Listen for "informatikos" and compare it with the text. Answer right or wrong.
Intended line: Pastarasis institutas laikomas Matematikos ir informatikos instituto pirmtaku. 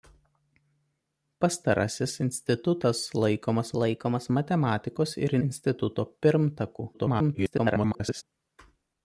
wrong